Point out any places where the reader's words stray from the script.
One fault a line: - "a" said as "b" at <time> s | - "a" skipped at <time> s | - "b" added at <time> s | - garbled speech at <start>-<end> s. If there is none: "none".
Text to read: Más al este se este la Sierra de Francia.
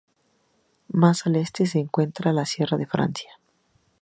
- "este" said as "encuentra" at 1.8 s